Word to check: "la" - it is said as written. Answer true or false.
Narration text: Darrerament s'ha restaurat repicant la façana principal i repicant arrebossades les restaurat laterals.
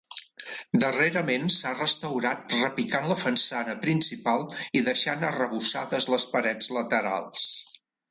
true